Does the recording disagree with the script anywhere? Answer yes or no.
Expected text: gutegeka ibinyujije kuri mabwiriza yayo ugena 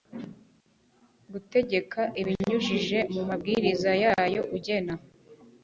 yes